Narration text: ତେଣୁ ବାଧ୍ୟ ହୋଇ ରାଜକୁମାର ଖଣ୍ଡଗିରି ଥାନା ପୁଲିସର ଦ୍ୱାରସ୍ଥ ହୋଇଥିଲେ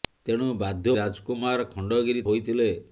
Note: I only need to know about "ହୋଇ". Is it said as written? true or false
false